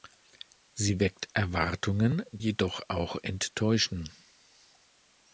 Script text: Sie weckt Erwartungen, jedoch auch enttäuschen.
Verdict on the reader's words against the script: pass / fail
pass